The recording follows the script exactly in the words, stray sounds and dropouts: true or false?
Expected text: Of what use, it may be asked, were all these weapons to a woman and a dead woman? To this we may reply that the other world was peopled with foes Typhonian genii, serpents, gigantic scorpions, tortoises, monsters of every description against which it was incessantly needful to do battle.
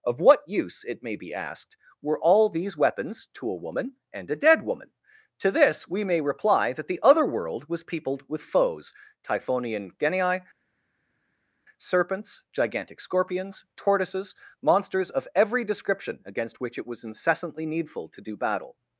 true